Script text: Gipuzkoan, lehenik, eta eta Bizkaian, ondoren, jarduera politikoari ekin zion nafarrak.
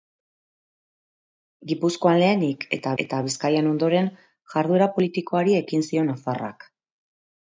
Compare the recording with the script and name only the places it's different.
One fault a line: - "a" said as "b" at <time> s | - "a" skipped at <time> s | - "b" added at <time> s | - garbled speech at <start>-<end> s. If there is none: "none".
none